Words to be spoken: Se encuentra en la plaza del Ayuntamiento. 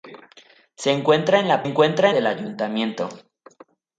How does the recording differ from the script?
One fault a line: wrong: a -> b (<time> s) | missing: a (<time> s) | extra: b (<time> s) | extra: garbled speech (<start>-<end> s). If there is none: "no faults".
wrong: plaza -> encuentra (1.6 s)